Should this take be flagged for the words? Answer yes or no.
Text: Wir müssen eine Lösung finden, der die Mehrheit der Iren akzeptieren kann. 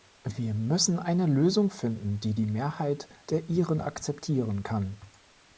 yes